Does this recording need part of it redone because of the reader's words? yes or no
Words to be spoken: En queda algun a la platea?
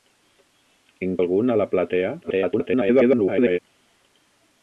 yes